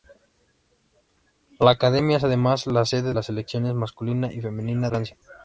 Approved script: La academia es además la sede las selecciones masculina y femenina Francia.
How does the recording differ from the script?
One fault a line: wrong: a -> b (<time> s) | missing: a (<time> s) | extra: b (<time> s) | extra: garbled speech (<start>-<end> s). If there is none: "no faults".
no faults